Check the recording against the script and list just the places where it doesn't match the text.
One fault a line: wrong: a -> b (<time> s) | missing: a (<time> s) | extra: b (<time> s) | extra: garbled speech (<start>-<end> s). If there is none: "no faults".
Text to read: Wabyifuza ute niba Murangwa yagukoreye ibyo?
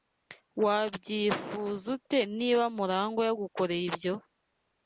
no faults